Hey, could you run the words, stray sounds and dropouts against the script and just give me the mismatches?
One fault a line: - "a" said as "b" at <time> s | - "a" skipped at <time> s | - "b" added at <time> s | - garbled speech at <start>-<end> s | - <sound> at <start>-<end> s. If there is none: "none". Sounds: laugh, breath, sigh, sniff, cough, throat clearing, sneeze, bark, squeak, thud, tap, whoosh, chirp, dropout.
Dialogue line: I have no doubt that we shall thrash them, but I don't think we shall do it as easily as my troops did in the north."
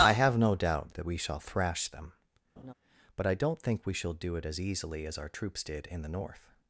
- laugh at 2.6-2.7 s
- "my" said as "our" at 5.2 s